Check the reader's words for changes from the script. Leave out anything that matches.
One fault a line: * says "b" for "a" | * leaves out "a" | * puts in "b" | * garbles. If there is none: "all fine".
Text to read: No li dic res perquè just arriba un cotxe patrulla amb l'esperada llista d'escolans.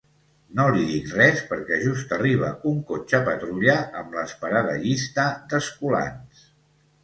all fine